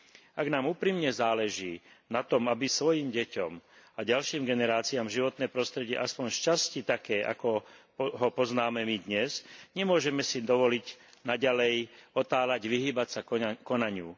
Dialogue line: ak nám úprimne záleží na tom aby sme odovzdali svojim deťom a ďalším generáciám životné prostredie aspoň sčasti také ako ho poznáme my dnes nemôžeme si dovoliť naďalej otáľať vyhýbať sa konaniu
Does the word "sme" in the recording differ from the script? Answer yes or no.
yes